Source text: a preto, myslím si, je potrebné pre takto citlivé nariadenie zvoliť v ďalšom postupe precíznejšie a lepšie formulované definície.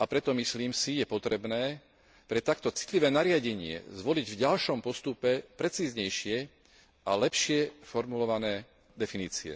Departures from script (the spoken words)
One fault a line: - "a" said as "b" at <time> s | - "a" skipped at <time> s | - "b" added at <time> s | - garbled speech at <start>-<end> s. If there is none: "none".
none